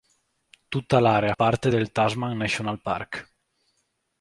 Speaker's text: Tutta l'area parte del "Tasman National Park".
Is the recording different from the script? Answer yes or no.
no